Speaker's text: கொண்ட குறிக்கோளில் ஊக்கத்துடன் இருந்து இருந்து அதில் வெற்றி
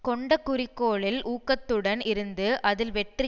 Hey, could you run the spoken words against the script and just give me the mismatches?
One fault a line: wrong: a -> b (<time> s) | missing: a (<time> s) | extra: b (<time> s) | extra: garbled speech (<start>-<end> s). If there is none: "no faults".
missing: இருந்து (2.5 s)